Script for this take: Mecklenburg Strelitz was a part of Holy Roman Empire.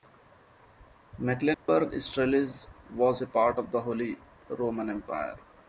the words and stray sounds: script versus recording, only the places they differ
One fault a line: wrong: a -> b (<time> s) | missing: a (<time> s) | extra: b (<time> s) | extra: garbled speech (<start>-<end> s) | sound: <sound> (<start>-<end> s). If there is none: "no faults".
sound: dropout (1.5-1.7 s)
extra: the (3.7 s)